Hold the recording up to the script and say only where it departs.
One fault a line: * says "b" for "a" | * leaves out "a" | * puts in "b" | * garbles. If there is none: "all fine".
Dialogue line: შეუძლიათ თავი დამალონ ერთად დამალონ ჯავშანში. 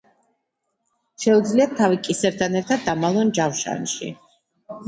* says "კისერთან" for "დამალონ"